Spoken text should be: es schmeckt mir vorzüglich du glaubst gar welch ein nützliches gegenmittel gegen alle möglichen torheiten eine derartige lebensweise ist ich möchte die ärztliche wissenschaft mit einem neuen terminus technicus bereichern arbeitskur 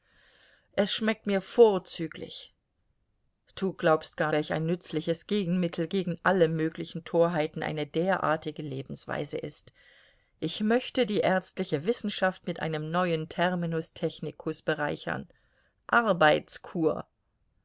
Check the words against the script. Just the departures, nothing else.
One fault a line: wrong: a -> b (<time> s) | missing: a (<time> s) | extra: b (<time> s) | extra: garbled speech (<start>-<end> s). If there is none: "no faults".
no faults